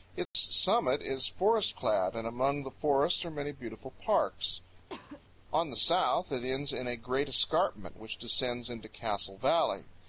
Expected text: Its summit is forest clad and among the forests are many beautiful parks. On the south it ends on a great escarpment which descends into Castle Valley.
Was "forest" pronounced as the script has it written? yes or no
yes